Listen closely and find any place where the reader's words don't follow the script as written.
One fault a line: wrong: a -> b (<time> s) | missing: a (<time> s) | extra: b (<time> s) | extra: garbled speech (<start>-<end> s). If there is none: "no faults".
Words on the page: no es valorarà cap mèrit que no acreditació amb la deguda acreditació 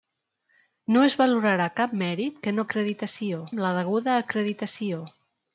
no faults